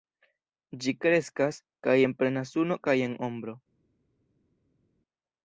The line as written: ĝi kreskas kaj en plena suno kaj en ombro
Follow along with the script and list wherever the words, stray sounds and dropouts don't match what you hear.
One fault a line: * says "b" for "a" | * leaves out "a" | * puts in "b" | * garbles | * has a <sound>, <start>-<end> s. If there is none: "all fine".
all fine